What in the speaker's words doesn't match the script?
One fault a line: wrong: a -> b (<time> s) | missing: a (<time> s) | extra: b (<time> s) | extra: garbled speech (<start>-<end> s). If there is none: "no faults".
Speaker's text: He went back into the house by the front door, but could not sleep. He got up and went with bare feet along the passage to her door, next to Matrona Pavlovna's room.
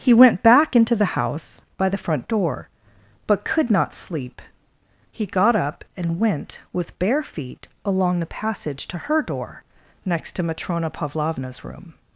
no faults